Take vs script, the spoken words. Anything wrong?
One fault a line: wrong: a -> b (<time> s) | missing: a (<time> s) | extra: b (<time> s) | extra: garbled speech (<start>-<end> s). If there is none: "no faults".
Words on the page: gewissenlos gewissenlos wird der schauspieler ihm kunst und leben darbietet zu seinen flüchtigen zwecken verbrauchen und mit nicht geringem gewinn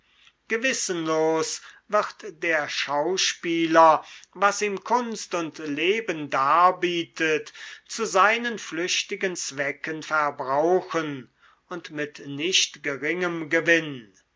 missing: gewissenlos (1.6 s)
extra: was (4.3 s)